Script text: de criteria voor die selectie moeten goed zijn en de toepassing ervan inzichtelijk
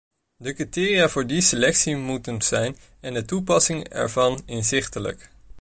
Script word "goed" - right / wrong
wrong